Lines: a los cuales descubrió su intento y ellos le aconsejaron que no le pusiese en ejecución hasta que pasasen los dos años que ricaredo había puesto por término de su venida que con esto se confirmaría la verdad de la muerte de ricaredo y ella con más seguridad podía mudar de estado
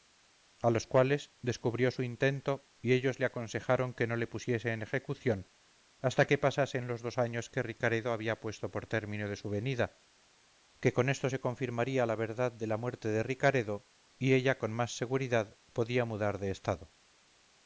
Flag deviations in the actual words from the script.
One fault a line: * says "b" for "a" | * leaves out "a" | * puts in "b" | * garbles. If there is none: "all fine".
all fine